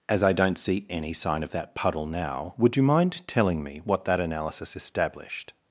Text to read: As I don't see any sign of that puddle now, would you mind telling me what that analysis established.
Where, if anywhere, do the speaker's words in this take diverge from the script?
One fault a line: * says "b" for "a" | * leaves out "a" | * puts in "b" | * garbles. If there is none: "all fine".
all fine